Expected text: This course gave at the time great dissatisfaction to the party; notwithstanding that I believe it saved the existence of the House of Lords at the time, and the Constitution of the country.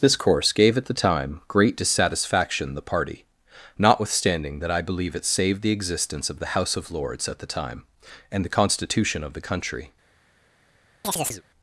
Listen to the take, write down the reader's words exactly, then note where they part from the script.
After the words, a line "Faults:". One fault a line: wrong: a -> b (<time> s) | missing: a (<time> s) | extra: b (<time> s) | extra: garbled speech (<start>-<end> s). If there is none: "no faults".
This course gave at the time great dissatisfaction the party; notwithstanding that I believe it saved the existence of the House of Lords at the time, and the Constitution of the country.
Faults:
missing: to (2.7 s)